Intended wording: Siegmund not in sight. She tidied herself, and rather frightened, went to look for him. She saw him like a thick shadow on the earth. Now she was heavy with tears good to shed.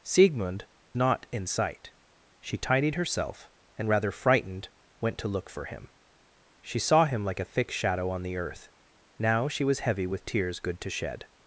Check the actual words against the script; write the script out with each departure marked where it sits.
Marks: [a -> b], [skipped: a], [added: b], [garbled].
Siegmund not in sight. She tidied herself, and rather frightened, went to look for him. She saw him like a thick shadow on the earth. Now she was heavy with tears good to shed.